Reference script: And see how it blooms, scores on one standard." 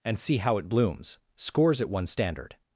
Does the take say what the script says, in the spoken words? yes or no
no